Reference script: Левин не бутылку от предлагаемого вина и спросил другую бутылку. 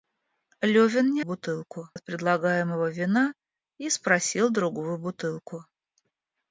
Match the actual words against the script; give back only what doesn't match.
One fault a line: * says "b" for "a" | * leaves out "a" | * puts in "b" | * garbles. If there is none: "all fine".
all fine